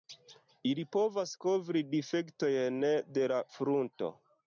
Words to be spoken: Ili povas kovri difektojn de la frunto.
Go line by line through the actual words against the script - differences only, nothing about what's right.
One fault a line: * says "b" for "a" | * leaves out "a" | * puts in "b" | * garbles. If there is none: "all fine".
all fine